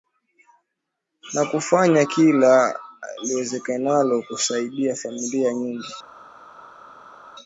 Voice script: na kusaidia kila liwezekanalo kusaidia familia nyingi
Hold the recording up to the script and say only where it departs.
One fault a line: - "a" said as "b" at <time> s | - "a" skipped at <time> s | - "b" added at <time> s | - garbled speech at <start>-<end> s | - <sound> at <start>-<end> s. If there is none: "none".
- "kusaidia" said as "kufanya" at 1.4 s